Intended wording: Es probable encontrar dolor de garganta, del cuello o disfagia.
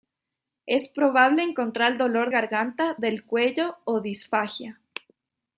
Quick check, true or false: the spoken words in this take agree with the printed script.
false